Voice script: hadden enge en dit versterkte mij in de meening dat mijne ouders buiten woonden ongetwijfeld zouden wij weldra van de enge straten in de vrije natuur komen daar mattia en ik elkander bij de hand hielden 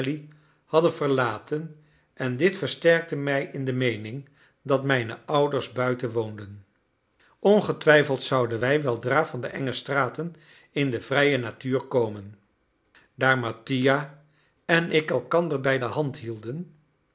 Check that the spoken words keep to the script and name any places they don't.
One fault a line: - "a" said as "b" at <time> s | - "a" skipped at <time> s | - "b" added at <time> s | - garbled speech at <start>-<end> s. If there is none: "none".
- "enge" said as "verlaten" at 0.9 s